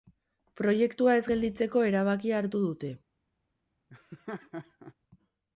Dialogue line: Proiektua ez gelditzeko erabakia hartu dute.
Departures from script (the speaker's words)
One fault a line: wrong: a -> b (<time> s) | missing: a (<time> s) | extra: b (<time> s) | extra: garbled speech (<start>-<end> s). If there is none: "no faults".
no faults